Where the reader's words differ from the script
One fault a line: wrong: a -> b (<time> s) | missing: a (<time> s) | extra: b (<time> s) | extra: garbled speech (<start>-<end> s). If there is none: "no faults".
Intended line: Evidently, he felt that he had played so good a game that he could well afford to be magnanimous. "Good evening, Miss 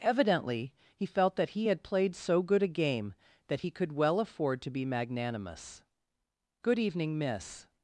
no faults